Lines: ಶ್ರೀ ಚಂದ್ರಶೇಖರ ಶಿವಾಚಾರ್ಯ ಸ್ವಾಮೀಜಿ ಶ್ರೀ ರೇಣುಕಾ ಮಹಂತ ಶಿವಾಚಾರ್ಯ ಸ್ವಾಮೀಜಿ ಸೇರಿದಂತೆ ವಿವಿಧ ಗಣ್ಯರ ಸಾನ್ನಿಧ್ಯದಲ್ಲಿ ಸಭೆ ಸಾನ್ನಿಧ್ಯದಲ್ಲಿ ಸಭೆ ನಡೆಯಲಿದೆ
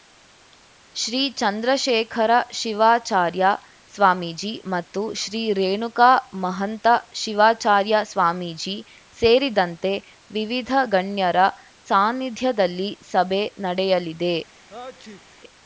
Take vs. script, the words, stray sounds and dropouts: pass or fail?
fail